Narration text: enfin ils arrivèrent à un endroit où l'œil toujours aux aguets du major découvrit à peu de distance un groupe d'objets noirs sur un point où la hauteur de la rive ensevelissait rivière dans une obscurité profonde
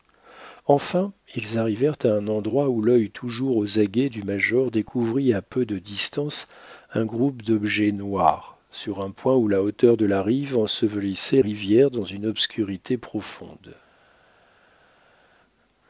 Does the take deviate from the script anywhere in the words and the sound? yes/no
no